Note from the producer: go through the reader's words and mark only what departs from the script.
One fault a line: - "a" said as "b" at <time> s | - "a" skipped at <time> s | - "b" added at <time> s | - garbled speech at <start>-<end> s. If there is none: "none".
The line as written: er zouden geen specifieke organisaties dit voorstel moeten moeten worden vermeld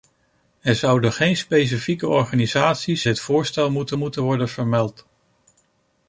none